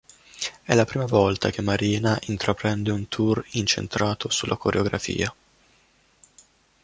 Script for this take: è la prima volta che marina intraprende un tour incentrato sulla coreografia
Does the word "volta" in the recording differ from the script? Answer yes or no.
no